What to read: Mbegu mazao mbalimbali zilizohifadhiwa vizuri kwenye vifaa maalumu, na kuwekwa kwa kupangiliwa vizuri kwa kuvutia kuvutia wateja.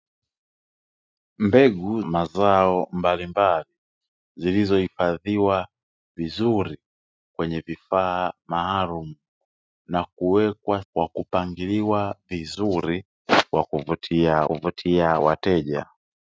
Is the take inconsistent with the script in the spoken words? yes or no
no